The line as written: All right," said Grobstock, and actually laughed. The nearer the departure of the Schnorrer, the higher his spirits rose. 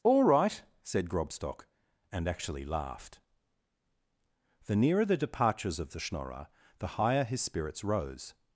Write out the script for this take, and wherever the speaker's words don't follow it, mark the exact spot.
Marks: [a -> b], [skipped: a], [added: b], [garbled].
All right," said Grobstock, and actually laughed. The nearer the [departure -> departures] of the Schnorrer, the higher his spirits rose.